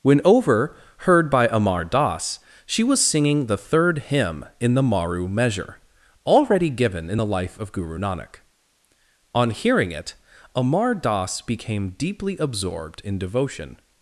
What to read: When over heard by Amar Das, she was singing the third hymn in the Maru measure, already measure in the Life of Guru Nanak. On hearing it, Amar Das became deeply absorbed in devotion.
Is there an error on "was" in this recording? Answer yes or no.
no